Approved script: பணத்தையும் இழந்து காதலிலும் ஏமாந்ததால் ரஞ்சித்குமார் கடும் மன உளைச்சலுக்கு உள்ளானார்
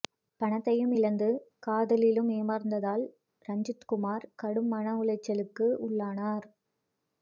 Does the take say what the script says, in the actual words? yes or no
yes